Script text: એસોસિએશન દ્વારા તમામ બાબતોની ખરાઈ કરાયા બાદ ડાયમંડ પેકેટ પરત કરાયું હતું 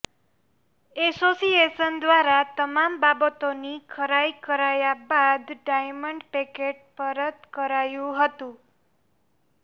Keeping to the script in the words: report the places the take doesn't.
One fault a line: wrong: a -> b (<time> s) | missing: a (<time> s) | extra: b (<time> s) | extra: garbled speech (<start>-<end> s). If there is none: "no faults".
no faults